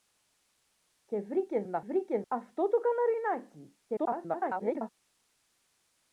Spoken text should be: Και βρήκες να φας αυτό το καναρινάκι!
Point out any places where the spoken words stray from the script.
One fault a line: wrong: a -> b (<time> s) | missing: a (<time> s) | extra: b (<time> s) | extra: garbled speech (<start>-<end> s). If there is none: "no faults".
wrong: φας -> βρήκες (1.8 s)
extra: garbled speech (3.9-4.9 s)